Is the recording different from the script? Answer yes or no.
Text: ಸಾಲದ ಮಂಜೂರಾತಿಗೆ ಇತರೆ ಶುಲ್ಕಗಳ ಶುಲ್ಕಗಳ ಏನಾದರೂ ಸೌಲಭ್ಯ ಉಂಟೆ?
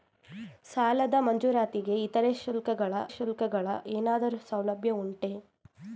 no